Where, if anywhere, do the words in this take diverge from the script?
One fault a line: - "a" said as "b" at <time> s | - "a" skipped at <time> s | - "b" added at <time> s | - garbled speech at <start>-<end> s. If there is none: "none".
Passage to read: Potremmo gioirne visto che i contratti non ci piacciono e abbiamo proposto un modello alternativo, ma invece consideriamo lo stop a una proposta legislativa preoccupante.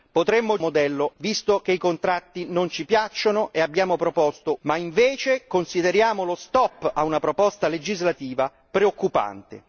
- "gioirne" said as "modello" at 0.6 s
- "un modello alternativo" skipped at 4.6 s